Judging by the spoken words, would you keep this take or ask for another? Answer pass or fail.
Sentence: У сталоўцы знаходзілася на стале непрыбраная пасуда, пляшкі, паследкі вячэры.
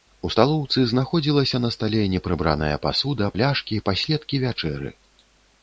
pass